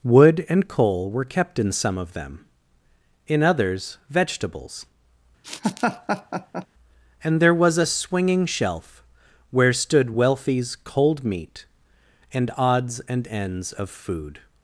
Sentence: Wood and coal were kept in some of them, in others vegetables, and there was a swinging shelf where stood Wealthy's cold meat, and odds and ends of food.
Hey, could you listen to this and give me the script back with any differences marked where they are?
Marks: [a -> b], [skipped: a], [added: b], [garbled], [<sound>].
Wood and coal were kept in some of them, in others vegetables, [laugh] and there was a swinging shelf where stood Wealthy's cold meat, and odds and ends of food.